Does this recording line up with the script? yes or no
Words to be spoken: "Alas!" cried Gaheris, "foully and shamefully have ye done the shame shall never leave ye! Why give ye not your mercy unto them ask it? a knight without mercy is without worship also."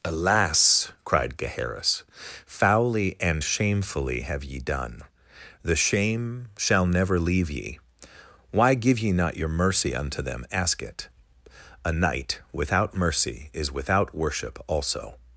yes